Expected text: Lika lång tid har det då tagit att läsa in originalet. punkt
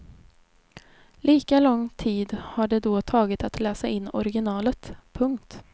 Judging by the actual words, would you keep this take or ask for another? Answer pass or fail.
pass